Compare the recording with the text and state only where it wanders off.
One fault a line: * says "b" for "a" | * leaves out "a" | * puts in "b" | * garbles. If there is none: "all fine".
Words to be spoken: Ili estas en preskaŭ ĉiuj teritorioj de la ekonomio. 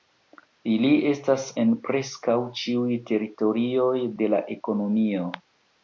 all fine